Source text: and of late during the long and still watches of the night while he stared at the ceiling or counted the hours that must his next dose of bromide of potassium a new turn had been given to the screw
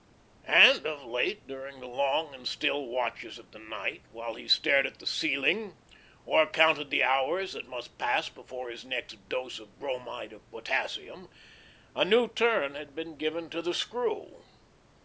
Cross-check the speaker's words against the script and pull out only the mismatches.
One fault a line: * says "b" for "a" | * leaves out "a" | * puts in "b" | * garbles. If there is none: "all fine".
* puts in "pass before"